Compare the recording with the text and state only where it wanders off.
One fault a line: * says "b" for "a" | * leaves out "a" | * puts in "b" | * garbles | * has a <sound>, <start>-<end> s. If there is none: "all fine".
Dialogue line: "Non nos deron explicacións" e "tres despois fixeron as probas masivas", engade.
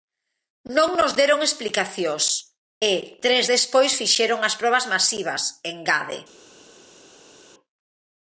all fine